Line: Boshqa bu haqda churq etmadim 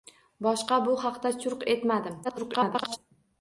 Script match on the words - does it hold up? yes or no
no